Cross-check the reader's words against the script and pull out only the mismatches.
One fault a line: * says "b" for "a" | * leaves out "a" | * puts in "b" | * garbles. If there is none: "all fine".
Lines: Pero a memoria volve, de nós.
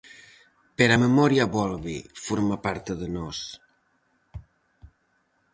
* puts in "forma parte"